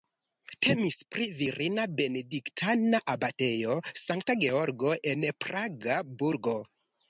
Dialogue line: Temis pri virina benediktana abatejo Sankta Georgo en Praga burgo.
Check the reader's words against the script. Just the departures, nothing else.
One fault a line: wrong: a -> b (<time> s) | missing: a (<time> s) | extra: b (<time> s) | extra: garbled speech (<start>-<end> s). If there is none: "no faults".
no faults